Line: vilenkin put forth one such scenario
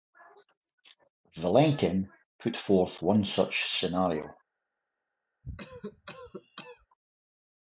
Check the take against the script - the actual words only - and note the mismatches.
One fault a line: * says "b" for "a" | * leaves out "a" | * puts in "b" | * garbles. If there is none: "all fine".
all fine